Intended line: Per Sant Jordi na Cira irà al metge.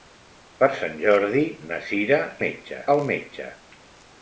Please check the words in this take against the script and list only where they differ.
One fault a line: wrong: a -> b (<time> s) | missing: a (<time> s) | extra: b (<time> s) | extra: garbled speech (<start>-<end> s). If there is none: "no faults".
wrong: irà -> metge (2.4 s)